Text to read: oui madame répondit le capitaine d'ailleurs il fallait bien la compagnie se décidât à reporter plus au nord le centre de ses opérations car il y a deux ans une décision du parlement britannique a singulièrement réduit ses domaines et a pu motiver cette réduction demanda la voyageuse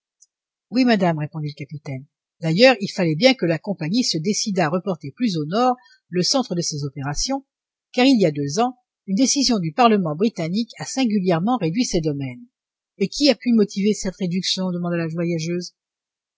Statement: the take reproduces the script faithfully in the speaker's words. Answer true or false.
false